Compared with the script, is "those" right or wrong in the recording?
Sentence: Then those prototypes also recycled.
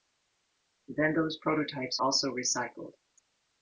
right